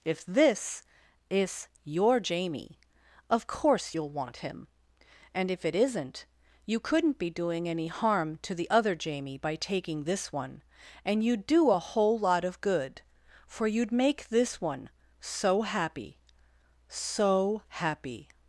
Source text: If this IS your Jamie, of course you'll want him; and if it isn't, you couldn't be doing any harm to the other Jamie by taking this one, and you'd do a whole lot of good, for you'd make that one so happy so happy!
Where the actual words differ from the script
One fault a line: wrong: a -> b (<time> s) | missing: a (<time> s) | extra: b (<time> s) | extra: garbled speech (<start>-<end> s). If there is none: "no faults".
wrong: that -> this (14.3 s)